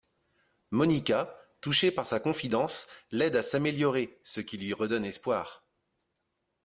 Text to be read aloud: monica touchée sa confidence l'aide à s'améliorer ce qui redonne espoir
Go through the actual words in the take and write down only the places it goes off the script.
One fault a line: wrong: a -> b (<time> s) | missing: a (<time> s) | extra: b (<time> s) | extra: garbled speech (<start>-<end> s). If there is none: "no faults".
extra: par (1.9 s)
extra: lui (4.6 s)